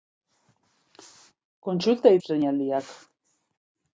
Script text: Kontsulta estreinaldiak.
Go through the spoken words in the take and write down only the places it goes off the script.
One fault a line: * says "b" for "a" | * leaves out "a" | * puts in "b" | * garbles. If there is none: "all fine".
all fine